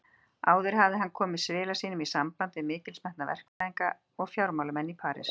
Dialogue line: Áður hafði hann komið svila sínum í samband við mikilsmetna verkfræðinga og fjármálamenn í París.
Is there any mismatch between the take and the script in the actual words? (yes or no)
no